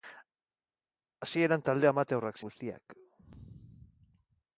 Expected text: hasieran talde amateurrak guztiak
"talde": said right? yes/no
yes